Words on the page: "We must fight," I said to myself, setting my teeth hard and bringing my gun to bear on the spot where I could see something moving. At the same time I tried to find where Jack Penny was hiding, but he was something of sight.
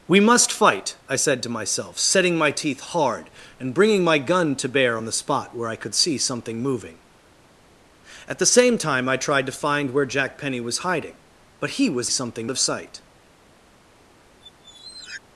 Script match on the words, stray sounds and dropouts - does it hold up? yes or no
no